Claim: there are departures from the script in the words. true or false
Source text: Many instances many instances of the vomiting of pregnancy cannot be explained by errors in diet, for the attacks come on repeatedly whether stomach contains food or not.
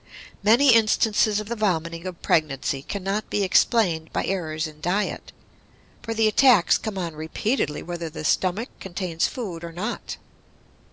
true